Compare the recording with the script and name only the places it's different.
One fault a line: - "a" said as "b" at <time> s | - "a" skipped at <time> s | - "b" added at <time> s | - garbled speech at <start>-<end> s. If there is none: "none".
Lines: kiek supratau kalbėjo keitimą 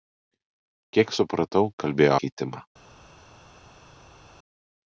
none